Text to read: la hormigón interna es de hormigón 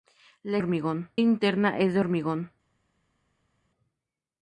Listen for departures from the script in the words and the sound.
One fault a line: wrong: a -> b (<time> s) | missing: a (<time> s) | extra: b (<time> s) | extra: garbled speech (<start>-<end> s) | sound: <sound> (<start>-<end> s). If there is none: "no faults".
no faults